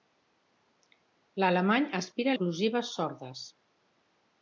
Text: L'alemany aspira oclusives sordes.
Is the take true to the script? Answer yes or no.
yes